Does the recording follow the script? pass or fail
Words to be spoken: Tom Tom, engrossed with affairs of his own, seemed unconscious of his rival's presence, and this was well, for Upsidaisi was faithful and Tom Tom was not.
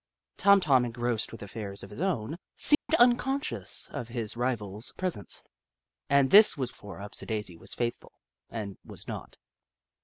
fail